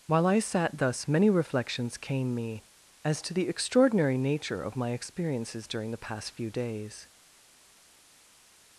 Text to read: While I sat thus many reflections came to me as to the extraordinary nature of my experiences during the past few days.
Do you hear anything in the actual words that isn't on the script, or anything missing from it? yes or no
yes